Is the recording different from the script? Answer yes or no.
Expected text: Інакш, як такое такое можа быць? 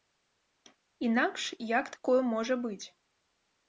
yes